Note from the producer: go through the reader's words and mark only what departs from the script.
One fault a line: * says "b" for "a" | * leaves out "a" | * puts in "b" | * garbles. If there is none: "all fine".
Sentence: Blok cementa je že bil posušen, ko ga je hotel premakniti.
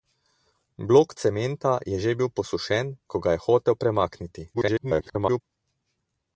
* garbles